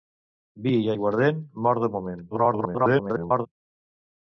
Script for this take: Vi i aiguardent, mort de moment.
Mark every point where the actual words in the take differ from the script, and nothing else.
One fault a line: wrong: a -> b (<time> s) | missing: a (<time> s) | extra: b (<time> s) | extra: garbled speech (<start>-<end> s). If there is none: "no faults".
extra: garbled speech (2.3-3.5 s)